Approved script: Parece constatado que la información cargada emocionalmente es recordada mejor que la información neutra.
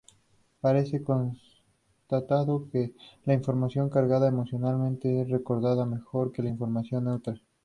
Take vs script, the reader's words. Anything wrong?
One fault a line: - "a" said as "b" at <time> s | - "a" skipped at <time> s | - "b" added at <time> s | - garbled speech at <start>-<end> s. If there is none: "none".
none